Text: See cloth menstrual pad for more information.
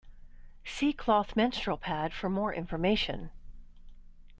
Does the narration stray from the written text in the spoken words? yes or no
no